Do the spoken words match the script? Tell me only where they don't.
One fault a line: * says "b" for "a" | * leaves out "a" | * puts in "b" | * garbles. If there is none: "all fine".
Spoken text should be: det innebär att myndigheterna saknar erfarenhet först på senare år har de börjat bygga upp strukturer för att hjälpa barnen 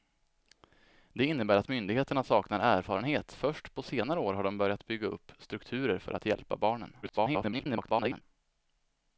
* garbles